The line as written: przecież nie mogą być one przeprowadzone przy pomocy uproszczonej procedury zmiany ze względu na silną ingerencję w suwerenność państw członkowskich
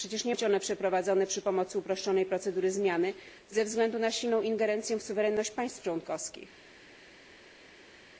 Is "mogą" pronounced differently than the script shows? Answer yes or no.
yes